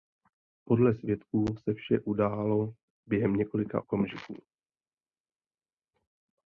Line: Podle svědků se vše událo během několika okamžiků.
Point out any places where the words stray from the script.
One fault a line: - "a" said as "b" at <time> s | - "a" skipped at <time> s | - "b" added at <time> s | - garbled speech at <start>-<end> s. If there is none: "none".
none